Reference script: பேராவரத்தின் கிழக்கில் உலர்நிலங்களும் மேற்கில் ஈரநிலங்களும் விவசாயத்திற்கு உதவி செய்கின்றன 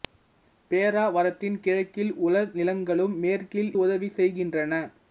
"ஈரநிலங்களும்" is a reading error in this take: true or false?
true